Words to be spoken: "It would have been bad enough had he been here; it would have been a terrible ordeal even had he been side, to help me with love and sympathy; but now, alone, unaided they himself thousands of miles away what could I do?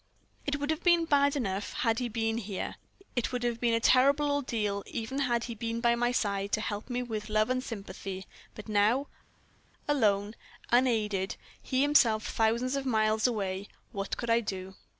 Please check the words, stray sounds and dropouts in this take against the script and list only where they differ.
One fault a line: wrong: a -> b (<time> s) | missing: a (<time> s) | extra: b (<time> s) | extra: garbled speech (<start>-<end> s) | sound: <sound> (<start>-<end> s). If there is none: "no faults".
extra: by my (5.8 s)
wrong: they -> he (11.6 s)